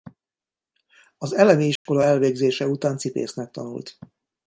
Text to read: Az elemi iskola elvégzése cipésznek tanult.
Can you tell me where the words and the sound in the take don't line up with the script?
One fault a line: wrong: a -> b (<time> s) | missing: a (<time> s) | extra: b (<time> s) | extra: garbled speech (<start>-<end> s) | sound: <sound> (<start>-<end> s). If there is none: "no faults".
sound: dropout (1.8-1.9 s)
extra: után (2.7 s)